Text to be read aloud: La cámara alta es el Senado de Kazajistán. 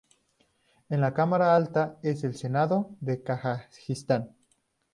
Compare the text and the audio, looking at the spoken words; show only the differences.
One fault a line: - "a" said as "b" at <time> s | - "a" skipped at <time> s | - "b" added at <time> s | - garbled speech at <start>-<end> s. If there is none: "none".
none